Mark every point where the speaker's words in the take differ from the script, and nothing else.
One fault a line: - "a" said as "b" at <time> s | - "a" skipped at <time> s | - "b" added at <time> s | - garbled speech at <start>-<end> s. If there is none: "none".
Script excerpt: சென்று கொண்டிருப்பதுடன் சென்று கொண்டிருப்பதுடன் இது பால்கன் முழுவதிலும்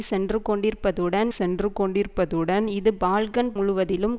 none